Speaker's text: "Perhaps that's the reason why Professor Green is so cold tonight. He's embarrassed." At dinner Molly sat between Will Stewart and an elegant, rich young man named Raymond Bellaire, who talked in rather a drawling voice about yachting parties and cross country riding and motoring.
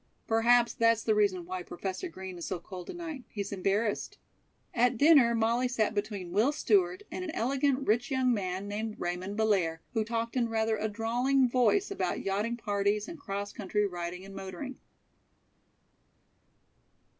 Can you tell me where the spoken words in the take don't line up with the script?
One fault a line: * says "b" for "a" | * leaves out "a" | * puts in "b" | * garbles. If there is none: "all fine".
all fine